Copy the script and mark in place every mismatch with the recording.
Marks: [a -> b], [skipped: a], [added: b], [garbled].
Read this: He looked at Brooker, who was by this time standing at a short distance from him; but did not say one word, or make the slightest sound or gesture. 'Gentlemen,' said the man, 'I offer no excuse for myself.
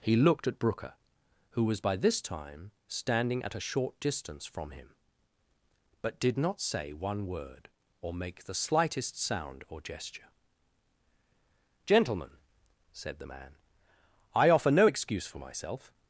He looked at Brooker, who was by this time standing at a short distance from him; but did not say one word, or make the slightest sound or gesture. 'Gentlemen,' said the man, 'I offer no excuse for myself.